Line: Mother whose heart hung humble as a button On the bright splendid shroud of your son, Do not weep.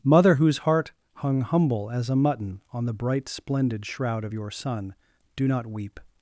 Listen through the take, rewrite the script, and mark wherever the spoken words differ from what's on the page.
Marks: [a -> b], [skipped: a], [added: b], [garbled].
Mother whose heart hung humble as a [button -> mutton] On the bright splendid shroud of your son, Do not weep.